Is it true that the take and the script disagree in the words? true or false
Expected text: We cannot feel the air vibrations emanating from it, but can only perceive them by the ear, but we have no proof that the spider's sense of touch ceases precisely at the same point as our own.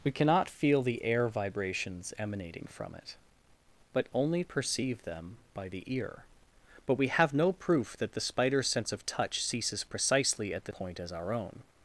true